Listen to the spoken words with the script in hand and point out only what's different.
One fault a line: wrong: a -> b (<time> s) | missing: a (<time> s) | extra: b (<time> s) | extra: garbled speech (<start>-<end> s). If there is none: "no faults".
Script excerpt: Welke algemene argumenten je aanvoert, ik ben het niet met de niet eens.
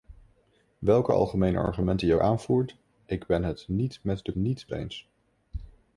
no faults